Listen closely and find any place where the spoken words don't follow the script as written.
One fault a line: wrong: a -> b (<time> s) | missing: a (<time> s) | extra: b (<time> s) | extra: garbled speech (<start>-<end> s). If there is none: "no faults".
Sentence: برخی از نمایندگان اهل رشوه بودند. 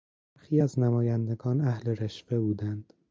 no faults